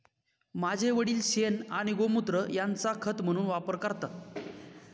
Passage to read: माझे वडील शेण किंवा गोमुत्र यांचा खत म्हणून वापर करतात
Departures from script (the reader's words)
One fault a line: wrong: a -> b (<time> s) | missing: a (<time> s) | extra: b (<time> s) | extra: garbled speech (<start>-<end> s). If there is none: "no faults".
wrong: किंवा -> आणि (1.7 s)